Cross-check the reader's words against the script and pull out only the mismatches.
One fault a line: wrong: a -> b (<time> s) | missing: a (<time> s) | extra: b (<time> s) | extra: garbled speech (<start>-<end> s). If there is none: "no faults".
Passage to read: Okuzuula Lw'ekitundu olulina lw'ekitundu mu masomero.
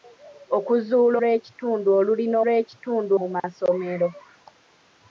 no faults